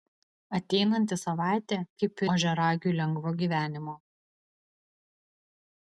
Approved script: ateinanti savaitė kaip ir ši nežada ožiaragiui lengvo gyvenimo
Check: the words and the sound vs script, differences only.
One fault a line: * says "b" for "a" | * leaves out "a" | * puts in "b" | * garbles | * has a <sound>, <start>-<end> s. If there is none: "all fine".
* leaves out "ir ši nežada"